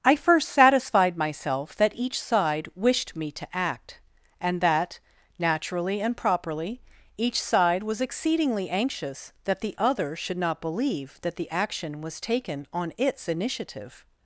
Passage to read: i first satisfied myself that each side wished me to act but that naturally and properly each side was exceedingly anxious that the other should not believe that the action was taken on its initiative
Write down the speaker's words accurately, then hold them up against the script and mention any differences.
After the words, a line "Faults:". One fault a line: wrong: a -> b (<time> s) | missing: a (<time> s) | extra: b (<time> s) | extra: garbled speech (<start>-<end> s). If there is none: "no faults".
i first satisfied myself that each side wished me to act and that naturally and properly each side was exceedingly anxious that the other should not believe that the action was taken on its initiative
Faults:
wrong: but -> and (4.4 s)